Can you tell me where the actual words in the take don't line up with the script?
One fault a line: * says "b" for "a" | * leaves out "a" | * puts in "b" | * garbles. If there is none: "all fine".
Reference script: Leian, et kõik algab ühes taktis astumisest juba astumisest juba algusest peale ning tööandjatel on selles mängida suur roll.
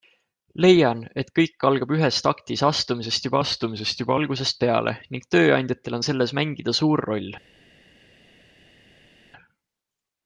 all fine